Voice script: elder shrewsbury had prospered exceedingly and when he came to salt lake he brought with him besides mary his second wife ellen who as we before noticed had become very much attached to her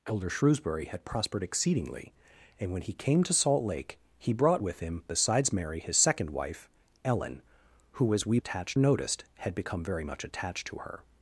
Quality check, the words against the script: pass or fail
fail